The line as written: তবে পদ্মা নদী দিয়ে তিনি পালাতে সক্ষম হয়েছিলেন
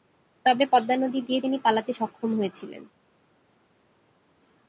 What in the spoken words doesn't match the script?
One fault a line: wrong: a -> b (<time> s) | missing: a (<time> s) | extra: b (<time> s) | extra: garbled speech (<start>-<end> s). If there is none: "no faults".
no faults